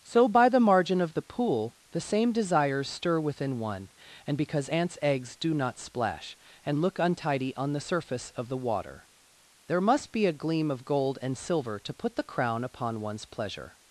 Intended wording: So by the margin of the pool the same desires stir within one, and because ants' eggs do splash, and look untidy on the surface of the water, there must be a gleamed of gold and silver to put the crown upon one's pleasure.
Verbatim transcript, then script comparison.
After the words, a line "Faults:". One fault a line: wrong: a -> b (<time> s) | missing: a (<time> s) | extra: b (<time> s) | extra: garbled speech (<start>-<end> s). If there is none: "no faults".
So by the margin of the pool the same desires stir within one, and because ants' eggs do not splash, and look untidy on the surface of the water, there must be a gleam of gold and silver to put the crown upon one's pleasure.
Faults:
extra: not (5.5 s)
wrong: gleamed -> gleam (10.4 s)